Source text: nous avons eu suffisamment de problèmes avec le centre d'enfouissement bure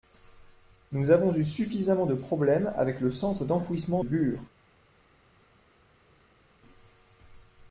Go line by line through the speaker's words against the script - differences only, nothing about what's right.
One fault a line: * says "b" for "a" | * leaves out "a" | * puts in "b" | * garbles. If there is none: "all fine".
all fine